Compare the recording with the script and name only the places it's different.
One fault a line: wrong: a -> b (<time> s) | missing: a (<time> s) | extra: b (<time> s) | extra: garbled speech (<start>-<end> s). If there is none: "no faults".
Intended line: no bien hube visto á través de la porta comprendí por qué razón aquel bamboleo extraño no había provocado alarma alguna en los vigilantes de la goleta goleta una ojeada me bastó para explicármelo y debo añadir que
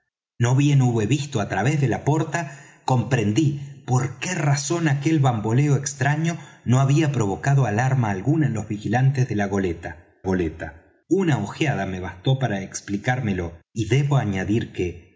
no faults